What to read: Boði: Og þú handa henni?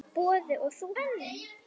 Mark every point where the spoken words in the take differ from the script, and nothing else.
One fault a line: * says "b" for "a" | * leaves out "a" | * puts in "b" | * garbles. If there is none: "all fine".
* leaves out "handa"